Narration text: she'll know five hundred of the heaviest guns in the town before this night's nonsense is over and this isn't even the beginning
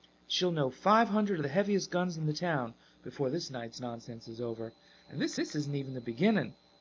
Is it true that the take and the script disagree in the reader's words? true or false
true